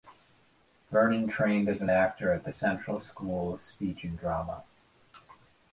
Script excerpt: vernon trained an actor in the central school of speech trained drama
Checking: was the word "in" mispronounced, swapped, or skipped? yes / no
yes